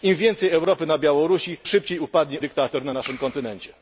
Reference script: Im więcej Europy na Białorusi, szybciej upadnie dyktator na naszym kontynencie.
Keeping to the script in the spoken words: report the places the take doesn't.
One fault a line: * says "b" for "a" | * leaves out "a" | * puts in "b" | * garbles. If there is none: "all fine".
all fine